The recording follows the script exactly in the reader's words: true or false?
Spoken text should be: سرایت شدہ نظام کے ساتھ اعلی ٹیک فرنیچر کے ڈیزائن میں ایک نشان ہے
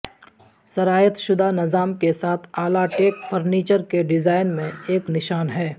true